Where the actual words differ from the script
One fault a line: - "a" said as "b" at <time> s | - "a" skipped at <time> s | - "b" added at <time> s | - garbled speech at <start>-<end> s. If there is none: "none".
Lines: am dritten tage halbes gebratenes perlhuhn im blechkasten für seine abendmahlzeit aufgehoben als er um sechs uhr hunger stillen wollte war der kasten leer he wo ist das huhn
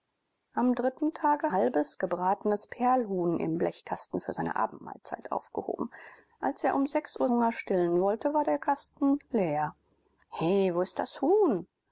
none